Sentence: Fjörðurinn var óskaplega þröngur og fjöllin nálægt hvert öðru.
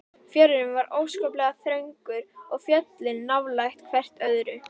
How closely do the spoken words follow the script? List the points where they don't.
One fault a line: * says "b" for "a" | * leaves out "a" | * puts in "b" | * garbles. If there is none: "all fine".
all fine